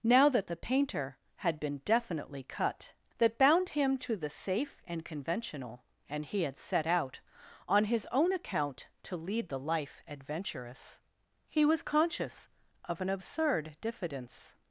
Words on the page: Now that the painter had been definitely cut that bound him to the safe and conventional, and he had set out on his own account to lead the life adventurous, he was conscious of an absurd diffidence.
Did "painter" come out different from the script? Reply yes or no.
no